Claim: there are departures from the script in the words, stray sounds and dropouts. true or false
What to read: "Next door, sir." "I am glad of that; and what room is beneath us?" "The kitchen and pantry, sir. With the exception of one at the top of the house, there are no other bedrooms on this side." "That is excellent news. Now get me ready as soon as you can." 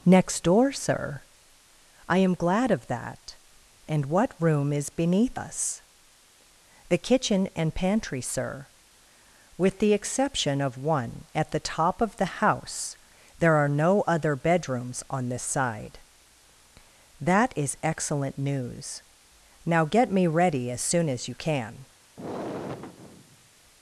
true